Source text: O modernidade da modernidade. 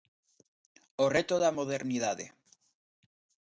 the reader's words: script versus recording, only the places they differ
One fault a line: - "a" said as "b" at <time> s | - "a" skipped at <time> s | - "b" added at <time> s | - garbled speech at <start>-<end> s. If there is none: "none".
- "modernidade" said as "reto" at 1.2 s